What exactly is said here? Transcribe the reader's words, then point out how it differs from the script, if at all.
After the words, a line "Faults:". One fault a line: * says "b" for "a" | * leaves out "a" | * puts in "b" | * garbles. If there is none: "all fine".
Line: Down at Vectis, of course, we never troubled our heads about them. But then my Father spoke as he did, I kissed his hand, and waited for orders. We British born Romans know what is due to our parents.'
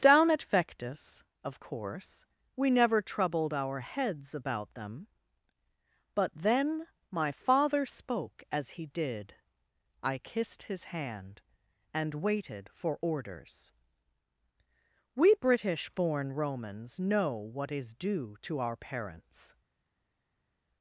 Down at Vectis, of course, we never troubled our heads about them. But then my Father spoke as he did, I kissed his hand, and waited for orders. We British born Romans know what is due to our parents.'
Faults:
all fine